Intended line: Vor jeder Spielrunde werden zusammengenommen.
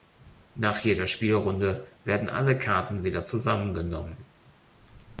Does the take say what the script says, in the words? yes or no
no